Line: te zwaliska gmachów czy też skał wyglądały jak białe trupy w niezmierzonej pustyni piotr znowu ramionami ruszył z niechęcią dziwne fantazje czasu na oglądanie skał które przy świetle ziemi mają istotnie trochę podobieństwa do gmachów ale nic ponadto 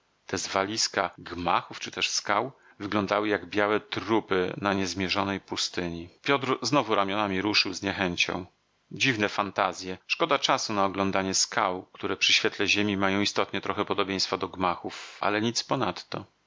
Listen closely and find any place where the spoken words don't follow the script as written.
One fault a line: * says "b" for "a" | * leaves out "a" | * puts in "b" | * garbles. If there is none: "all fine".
* says "na" for "w"
* puts in "szkoda"